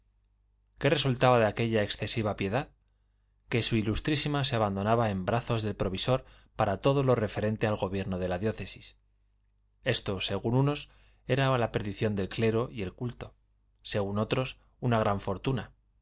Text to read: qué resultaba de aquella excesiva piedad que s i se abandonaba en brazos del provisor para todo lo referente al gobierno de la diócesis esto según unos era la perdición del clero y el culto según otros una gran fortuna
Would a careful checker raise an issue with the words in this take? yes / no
no